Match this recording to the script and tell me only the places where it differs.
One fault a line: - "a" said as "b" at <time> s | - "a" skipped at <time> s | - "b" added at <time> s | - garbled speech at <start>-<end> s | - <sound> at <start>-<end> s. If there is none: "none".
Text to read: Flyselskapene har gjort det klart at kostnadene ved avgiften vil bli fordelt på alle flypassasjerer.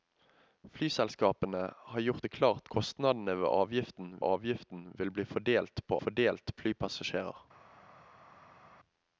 - "at" skipped at 2.7 s
- "avgiften" added at 4.2 s
- "alle" said as "fordelt" at 6.0 s